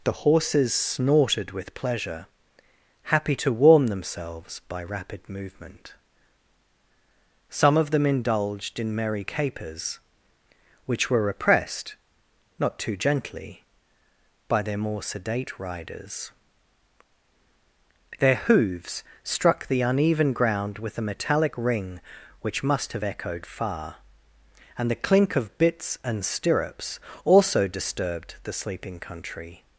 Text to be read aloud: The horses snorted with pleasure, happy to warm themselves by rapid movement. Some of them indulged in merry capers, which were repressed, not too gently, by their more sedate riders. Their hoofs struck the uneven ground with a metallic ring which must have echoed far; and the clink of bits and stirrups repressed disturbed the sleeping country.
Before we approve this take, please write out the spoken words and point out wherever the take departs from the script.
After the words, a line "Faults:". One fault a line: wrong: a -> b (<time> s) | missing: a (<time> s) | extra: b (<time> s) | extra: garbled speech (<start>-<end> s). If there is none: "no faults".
The horses snorted with pleasure, happy to warm themselves by rapid movement. Some of them indulged in merry capers, which were repressed, not too gently, by their more sedate riders. Their hoofs struck the uneven ground with a metallic ring which must have echoed far; and the clink of bits and stirrups also disturbed the sleeping country.
Faults:
wrong: repressed -> also (27.3 s)